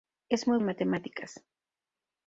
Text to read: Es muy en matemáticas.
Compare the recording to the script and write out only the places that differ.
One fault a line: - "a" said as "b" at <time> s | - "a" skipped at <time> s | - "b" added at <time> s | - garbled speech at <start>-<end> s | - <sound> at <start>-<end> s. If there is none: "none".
none